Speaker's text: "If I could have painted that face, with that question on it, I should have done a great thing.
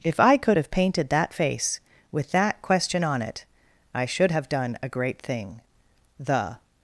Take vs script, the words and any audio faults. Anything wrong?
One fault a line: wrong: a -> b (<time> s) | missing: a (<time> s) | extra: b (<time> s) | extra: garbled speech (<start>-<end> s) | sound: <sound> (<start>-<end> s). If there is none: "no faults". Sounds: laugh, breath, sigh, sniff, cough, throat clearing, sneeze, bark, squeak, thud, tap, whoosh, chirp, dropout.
extra: The (6.2 s)